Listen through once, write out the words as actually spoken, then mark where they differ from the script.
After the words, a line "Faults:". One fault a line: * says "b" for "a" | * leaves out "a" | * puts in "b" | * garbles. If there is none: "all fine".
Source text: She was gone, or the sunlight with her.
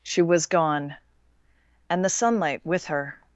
She was gone, and the sunlight with her.
Faults:
* says "and" for "or"